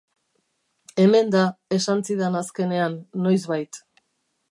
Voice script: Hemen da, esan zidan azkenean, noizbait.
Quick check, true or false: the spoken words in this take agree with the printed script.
true